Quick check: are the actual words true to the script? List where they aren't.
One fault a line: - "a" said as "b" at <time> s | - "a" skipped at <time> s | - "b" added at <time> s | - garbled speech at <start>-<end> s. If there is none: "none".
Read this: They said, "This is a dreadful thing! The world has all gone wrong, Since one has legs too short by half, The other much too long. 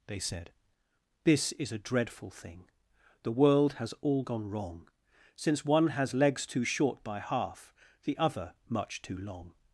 none